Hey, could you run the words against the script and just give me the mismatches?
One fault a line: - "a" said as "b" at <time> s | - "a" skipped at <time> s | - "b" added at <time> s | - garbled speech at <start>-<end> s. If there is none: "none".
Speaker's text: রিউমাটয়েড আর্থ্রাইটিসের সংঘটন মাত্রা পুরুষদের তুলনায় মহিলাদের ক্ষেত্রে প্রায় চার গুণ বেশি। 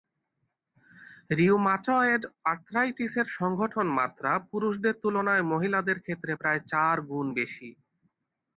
none